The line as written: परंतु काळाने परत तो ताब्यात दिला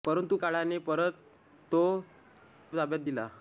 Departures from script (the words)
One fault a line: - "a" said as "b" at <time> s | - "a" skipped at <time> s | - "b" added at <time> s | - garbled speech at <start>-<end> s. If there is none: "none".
none